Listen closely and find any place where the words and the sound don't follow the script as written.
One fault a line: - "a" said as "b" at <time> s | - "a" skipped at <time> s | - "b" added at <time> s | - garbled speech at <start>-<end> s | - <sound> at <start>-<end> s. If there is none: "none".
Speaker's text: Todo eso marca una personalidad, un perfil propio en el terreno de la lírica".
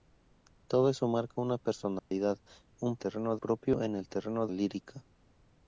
- dropout at 2.0-2.1 s
- "perfil" said as "terreno" at 3.0 s
- "de la" skipped at 4.5 s